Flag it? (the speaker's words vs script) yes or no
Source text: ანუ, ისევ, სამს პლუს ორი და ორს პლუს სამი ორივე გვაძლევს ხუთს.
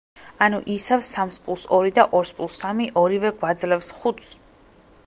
no